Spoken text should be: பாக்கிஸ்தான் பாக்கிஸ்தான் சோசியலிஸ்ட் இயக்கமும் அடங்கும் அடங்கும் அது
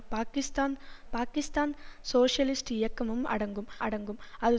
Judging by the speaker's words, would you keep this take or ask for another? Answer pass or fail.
pass